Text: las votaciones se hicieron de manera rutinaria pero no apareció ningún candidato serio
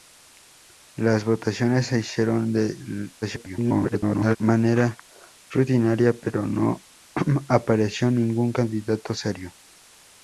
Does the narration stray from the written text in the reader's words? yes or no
yes